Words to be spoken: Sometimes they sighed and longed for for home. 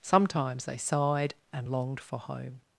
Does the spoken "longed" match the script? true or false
true